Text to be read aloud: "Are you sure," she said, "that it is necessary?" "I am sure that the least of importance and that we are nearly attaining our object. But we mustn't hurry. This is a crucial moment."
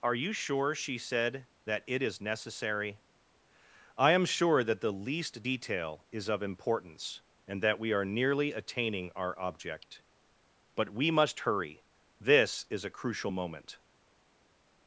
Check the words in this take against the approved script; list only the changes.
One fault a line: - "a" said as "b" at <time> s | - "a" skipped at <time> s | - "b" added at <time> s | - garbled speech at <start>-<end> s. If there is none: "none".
- "detail is" added at 5.4 s
- "mustn't" said as "must" at 11.1 s